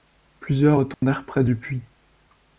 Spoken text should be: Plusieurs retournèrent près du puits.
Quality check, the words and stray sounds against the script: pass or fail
fail